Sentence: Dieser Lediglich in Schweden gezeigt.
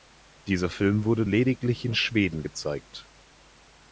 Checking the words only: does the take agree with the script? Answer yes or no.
no